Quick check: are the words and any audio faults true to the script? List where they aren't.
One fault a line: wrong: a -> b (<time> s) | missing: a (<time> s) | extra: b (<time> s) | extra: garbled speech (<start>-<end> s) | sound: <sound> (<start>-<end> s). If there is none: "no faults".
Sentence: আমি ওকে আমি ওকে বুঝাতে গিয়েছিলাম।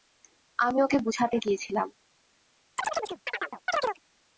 missing: আমি ওকে (1.0 s)
sound: chirp (2.8-4.0 s)